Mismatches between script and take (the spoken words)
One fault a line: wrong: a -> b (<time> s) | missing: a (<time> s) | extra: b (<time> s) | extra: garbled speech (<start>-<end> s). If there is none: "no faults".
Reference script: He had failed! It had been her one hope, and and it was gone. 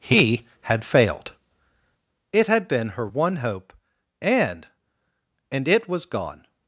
no faults